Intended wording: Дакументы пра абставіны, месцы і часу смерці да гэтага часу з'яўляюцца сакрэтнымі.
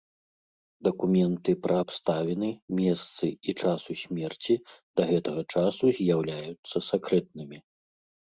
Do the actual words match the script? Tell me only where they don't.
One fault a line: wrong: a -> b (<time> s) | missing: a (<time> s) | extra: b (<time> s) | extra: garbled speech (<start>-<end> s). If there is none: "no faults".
no faults